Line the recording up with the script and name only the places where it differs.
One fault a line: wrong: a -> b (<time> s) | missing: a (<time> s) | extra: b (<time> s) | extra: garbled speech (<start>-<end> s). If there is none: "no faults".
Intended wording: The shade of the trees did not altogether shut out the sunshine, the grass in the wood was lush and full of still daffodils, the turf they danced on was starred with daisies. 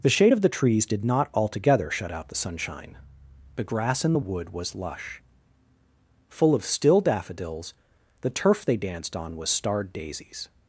missing: and (5.2 s)
missing: with (9.9 s)